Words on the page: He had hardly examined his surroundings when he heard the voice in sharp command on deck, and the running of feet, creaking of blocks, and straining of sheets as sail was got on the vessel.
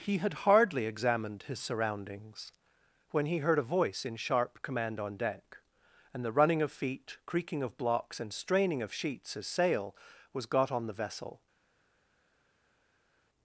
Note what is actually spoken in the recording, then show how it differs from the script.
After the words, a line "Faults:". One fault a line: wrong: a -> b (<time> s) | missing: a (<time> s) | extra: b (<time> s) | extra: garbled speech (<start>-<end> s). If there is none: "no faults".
He had hardly examined his surroundings when he heard a voice in sharp command on deck, and the running of feet, creaking of blocks, and straining of sheets as sail was got on the vessel.
Faults:
wrong: the -> a (3.6 s)